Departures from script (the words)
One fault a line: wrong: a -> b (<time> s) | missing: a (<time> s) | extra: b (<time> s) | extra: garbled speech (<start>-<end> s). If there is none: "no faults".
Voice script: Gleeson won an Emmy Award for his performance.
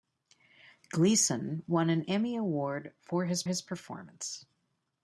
extra: his (3.4 s)